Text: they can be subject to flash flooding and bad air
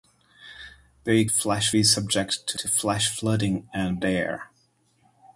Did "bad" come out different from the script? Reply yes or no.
yes